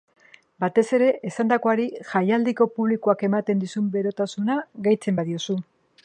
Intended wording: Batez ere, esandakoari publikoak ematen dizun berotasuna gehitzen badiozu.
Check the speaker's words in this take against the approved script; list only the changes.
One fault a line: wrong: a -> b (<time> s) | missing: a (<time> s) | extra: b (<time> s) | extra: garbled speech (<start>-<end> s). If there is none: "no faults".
extra: jaialdiko (2.1 s)